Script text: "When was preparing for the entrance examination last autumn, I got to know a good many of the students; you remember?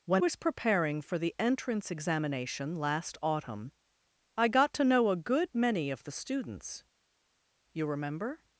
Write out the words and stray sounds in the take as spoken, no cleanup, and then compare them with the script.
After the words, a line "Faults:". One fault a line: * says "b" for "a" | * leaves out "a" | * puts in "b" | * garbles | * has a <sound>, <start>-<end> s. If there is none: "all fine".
"When was preparing for the entrance examination last autumn, I got to know a good many of the students; you remember?
Faults:
all fine